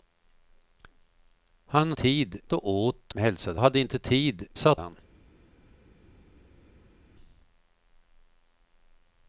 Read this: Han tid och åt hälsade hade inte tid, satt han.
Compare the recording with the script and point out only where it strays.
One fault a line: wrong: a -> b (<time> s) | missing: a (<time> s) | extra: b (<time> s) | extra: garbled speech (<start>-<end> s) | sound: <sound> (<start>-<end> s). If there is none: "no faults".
no faults